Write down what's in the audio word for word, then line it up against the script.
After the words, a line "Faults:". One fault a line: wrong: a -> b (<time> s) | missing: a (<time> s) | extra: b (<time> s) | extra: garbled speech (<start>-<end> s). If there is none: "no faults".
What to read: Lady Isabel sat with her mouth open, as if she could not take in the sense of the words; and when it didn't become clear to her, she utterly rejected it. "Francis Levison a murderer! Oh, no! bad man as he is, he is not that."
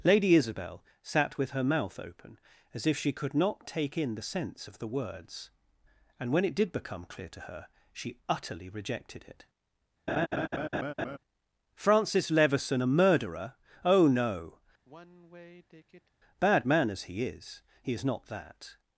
Lady Isabel sat with her mouth open, as if she could not take in the sense of the words; and when it did become clear to her, she utterly rejected it. "Francis Levison a murderer! Oh, no! bad man as he is, he is not that."
Faults:
wrong: didn't -> did (6.6 s)